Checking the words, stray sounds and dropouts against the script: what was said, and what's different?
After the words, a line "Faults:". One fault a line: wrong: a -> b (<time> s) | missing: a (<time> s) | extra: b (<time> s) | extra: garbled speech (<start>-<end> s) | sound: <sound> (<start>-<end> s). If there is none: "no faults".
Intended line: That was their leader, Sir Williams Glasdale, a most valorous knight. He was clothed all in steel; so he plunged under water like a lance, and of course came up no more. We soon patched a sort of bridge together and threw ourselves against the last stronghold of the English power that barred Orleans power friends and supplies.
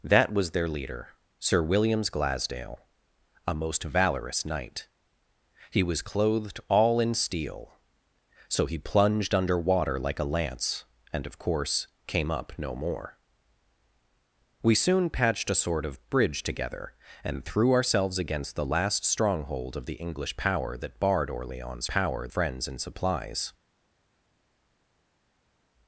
That was their leader, Sir Williams Glasdale, a most valorous knight. He was clothed all in steel; so he plunged under water like a lance, and of course came up no more. We soon patched a sort of bridge together and threw ourselves against the last stronghold of the English power that barred Orleans power friends and supplies.
Faults:
no faults